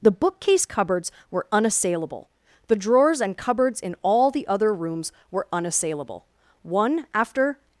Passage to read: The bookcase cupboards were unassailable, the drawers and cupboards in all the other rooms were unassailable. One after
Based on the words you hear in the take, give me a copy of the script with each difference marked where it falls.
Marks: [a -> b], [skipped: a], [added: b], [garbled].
The bookcase cupboards were unassailable, the drawers and cupboards in all the other rooms were unassailable. One after